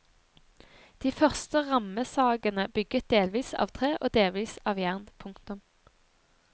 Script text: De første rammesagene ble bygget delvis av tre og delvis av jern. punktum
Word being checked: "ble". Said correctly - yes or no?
no